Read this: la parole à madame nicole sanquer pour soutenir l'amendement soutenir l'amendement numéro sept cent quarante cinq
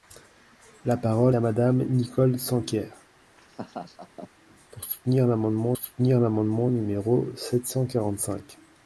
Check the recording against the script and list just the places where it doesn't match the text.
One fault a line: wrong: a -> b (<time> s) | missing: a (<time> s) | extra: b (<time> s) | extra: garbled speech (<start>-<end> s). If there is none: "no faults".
no faults